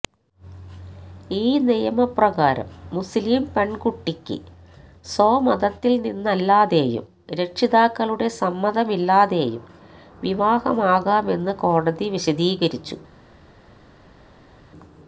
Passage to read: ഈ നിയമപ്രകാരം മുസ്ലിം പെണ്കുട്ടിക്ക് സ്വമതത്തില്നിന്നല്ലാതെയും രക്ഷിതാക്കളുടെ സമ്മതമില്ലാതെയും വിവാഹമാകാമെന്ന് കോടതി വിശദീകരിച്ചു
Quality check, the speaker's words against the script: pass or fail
pass